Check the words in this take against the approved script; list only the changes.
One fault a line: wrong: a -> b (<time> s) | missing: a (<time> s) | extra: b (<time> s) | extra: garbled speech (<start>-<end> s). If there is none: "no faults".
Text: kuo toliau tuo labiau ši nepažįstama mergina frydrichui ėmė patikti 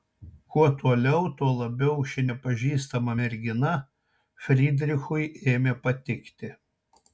no faults